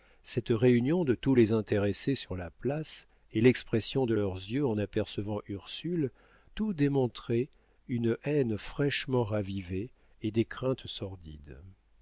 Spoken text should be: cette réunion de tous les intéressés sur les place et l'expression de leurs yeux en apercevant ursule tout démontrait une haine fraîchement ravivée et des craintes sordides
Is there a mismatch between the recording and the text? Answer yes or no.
yes